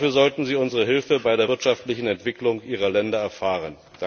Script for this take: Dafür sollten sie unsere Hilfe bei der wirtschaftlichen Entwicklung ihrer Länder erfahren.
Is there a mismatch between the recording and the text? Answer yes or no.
no